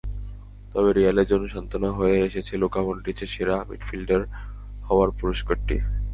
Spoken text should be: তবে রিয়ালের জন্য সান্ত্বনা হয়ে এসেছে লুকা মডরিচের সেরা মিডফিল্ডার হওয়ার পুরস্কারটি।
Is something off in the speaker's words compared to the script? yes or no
no